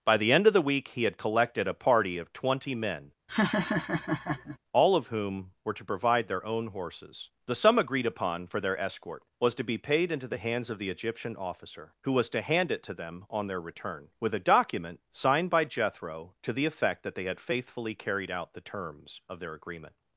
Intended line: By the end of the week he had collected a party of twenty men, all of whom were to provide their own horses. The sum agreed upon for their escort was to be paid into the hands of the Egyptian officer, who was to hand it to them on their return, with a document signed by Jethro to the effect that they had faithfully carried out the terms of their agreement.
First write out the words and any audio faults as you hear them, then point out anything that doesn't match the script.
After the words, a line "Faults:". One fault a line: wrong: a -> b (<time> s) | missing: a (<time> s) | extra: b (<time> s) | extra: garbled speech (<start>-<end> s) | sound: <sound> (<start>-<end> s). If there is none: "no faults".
By the end of the week he had collected a party of twenty men, all of whom were to provide their own horses. The sum agreed upon for their escort was to be paid into the hands of the Egyptian officer, who was to hand it to them on their return, with a document signed by Jethro to the effect that they had faithfully carried out the terms of their agreement.
Faults:
sound: laugh (3.3-4.6 s)